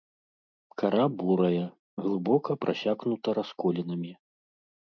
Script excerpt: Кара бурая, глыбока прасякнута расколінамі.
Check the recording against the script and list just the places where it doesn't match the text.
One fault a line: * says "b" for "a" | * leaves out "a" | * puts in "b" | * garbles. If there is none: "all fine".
all fine